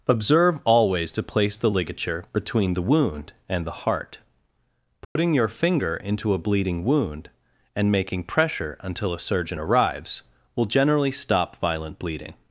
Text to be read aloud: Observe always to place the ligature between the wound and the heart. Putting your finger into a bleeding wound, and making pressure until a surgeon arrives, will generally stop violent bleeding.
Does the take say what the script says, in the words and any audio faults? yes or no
no